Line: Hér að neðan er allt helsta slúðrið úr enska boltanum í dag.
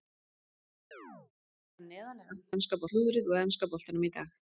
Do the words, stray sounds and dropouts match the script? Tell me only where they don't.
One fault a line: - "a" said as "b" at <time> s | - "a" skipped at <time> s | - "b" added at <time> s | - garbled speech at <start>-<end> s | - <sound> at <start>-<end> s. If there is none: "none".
- chirp at 0.9-1.3 s
- "helsta" said as "enska" at 2.6 s